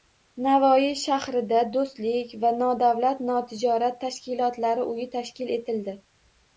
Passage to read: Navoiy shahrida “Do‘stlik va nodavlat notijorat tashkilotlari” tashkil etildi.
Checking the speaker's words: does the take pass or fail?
fail